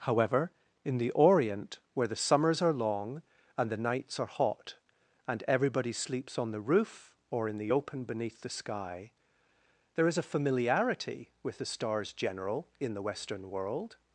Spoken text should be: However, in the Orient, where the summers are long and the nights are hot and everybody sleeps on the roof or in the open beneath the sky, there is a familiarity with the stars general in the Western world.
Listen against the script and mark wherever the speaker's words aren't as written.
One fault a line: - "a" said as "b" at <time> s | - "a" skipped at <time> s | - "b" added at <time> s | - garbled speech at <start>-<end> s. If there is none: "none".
none